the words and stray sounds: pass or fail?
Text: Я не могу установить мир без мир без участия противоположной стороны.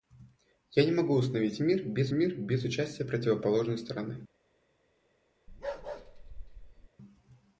fail